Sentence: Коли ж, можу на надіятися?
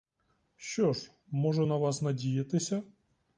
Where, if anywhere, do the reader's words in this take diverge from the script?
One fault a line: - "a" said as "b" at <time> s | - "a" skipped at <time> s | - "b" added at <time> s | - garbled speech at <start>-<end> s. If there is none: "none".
- "Коли" said as "Що" at 0.6 s
- "вас" added at 1.8 s